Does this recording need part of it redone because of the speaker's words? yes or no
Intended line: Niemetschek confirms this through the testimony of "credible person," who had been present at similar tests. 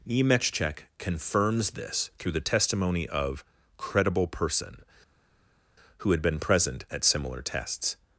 no